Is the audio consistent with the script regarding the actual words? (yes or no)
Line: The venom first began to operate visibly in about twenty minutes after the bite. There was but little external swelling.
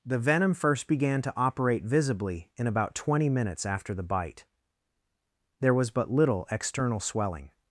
yes